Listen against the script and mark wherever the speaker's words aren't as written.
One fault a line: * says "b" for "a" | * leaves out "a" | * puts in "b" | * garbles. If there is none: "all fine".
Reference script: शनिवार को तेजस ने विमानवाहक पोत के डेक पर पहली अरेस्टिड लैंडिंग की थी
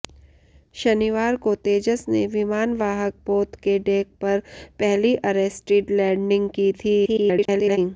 * garbles